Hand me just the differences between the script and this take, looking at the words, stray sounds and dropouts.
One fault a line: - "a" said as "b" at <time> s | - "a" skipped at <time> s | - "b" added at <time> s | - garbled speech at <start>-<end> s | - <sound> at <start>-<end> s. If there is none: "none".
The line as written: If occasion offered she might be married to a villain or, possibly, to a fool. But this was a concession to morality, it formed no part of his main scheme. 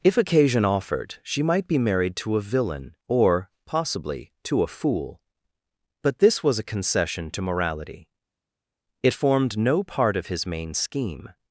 none